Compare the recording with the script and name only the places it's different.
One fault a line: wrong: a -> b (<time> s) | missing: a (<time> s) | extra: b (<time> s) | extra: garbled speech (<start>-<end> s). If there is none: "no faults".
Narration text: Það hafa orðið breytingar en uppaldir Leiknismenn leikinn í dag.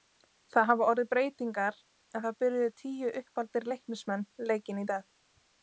extra: það byrjuðu tíu (2.2 s)